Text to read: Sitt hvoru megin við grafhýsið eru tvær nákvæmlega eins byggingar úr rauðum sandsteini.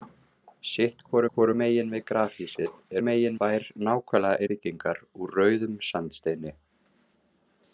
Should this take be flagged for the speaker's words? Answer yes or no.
yes